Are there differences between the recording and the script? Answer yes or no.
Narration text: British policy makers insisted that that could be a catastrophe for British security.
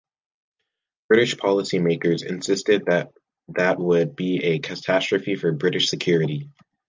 yes